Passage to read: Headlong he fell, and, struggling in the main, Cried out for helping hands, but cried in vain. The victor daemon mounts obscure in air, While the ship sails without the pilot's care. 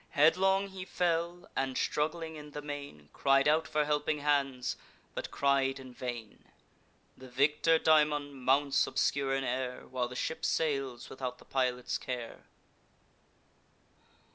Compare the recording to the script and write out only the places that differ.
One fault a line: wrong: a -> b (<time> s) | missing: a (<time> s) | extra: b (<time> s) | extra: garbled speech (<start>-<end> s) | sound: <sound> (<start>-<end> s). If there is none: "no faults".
no faults